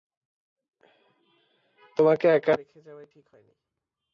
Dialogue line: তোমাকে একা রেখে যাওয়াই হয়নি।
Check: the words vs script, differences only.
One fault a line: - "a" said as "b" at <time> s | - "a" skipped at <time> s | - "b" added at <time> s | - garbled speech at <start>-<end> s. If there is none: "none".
- "ঠিক" added at 3.1 s